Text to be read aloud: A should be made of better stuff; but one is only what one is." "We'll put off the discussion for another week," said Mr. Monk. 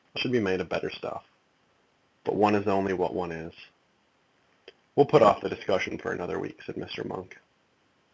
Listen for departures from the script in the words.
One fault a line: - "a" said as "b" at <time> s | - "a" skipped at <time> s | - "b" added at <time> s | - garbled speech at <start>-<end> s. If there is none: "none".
none